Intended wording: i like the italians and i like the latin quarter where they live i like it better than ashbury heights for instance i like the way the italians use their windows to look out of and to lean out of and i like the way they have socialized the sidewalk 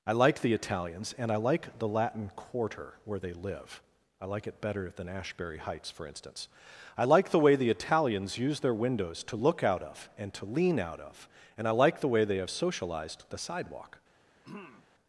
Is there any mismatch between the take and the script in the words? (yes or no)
no